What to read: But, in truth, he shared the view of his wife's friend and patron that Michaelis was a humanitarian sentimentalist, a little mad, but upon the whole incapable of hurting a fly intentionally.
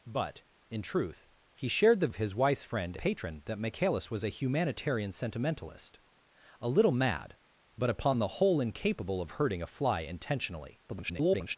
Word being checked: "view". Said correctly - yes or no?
no